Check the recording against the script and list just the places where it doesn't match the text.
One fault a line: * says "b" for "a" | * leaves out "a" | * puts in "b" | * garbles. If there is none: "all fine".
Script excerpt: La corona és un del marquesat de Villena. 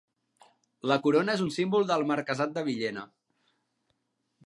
* puts in "símbol"